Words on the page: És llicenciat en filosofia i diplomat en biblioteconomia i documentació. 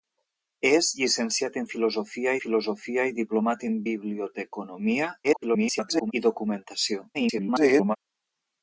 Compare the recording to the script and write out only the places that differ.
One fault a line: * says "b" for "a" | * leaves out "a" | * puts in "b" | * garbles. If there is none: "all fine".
* puts in "filosofia"
* garbles
* garbles